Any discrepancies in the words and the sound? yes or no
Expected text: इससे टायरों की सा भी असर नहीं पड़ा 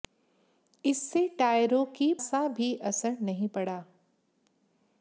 no